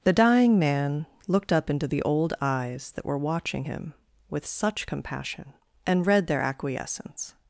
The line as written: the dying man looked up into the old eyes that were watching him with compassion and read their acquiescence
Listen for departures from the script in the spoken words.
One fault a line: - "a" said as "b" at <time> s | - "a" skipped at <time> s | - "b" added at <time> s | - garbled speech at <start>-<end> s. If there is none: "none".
- "such" added at 4.5 s